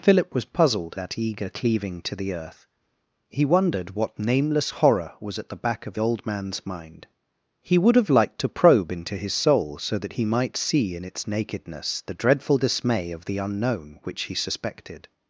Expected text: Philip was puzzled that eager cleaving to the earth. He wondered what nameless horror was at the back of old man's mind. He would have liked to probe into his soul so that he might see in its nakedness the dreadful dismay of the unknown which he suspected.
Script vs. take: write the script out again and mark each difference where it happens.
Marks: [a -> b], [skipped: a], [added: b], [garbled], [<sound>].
Philip was puzzled that eager cleaving to the earth. He wondered what nameless horror was at the back of old man's mind. He would have liked to probe into his soul so that he might see in its nakedness the dreadful dismay of the unknown which he suspected.